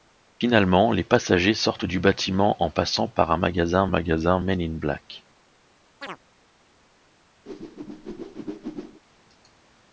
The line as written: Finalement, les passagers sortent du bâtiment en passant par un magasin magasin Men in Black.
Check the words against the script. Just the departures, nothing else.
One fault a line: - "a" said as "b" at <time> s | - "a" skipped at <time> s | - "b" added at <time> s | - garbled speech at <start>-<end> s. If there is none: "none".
none